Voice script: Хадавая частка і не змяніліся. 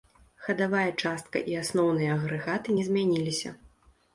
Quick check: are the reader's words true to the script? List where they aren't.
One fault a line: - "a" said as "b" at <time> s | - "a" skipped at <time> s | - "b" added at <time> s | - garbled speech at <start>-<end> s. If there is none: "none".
- "асноўныя агрэгаты" added at 1.6 s